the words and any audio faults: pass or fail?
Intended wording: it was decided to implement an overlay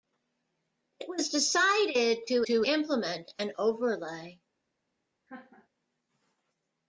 fail